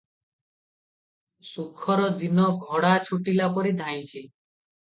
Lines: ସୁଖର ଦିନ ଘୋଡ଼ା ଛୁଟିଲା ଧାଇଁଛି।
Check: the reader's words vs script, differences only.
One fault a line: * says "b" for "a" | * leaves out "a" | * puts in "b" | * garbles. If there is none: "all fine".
* puts in "ପରି"